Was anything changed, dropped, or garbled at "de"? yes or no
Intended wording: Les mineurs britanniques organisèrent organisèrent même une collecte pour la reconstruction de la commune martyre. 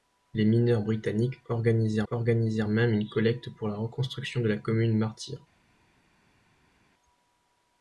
no